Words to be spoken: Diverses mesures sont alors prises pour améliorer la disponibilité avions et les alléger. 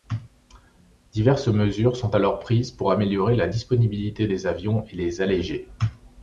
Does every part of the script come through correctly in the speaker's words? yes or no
no